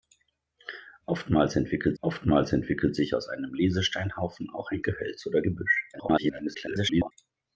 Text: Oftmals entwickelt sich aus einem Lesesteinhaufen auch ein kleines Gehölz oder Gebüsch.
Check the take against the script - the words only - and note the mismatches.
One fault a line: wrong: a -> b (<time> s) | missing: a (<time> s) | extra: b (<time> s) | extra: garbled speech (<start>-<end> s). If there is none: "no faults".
extra: oftmals entwickelt (2.0 s)
missing: kleines (4.8 s)
extra: garbled speech (5.9-7.1 s)